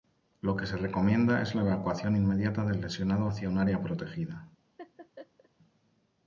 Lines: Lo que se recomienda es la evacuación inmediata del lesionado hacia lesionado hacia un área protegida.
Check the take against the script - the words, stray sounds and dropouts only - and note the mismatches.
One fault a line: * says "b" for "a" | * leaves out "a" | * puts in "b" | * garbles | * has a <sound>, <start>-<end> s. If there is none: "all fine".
* leaves out "lesionado hacia"
* has a laugh, 4.8-5.5 s